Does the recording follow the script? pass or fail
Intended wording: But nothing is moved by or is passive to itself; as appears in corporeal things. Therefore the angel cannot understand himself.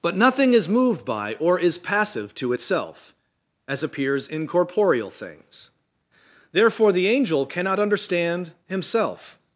pass